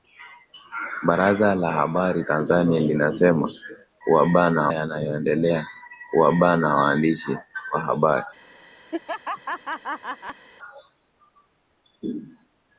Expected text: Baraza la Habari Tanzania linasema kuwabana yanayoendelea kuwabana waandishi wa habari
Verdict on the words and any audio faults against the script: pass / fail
fail